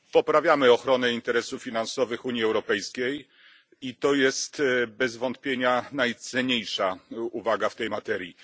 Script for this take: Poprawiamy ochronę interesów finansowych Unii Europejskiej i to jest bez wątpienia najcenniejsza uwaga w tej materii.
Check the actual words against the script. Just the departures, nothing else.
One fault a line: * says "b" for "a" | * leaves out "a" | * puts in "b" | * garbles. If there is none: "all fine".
all fine